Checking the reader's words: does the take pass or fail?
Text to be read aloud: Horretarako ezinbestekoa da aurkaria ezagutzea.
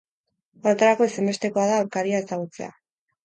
pass